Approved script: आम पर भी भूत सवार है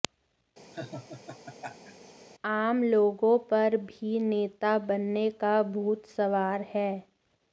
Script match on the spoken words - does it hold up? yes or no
no